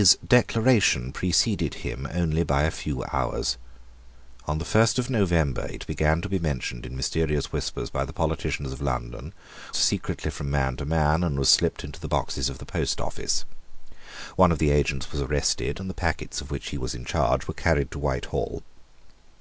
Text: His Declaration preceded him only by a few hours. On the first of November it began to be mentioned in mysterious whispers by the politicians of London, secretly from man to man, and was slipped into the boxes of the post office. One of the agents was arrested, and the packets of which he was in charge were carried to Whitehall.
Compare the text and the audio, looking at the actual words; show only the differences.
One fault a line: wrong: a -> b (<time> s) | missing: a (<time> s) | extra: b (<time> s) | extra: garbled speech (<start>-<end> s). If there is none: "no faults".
no faults